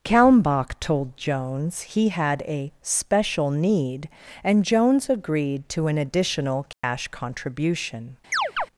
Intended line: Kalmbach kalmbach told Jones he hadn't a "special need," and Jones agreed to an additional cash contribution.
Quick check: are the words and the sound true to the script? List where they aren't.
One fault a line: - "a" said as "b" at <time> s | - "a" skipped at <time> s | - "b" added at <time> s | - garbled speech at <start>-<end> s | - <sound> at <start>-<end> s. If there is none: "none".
- "kalmbach" skipped at 0.8 s
- "hadn't" said as "had" at 2.1 s
- dropout at 6.7-6.8 s
- chirp at 8.3-8.7 s